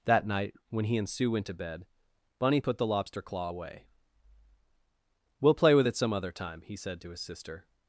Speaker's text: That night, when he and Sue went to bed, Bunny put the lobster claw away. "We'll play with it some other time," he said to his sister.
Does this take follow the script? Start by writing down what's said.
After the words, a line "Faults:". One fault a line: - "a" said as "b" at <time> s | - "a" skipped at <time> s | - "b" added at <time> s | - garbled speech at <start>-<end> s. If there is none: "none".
That night, when he and Sue went to bed, Bunny put the lobster claw away. "We'll play with it some other time," he said to his sister.
Faults:
none